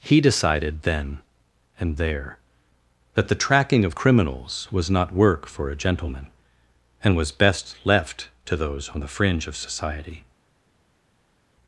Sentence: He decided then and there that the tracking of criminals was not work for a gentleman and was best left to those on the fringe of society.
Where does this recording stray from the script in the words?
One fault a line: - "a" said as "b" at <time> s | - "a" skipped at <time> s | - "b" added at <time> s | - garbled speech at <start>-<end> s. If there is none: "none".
none